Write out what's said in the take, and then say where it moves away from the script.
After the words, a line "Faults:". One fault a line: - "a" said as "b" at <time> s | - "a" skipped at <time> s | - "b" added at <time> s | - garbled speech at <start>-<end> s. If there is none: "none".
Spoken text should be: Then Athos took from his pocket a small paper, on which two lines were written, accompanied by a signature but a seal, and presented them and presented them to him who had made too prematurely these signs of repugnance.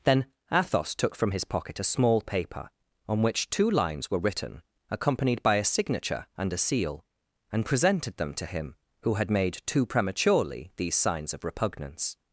Then Athos took from his pocket a small paper, on which two lines were written, accompanied by a signature and a seal, and presented them to him who had made too prematurely these signs of repugnance.
Faults:
- "but" said as "and" at 6.4 s
- "and presented them" skipped at 8.3 s